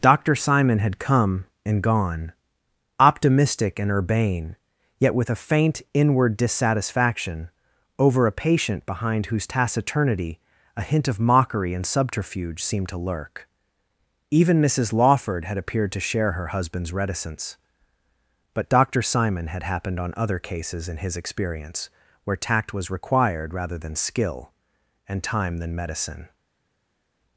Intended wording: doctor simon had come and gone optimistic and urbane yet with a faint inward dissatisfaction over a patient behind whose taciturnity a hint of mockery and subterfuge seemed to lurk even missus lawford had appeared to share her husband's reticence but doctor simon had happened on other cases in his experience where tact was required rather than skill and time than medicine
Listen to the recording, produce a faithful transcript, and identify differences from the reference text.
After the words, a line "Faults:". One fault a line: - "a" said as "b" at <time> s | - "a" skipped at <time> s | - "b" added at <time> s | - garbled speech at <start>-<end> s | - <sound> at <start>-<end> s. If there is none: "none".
doctor simon had come and gone optimistic and urbane yet with a faint inward dissatisfaction over a patient behind whose taciturnity a hint of mockery and subterfuge seemed to lurk even missus lawford had appeared to share her husband's reticence but doctor simon had happened on other cases in his experience where tact was required rather than skill and time than medicine
Faults:
none